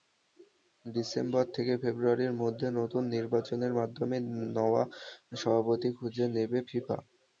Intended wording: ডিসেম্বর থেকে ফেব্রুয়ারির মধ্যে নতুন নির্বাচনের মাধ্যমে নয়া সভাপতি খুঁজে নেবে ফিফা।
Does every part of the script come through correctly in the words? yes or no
yes